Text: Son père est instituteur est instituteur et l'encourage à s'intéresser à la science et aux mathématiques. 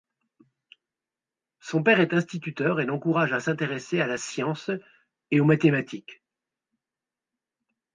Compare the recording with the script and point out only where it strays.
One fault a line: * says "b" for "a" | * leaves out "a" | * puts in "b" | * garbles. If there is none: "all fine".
* leaves out "est instituteur"